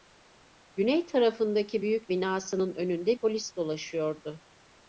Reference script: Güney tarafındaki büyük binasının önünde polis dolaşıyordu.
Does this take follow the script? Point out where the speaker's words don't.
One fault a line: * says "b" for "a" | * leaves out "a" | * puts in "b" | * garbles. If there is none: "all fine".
all fine